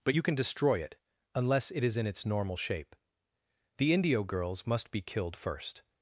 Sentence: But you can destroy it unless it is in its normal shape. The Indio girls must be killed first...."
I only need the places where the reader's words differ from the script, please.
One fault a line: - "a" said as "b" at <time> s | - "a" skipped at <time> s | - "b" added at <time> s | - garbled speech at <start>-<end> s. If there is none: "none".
none